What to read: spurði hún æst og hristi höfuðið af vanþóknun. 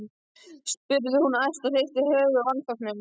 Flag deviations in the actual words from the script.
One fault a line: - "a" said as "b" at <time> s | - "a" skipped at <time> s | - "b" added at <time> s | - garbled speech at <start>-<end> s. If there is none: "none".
none